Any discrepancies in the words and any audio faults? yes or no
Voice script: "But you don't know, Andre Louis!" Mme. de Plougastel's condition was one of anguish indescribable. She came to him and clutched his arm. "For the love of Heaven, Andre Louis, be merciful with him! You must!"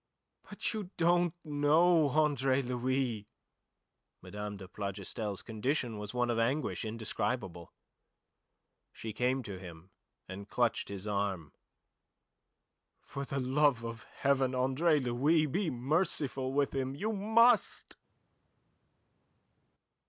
no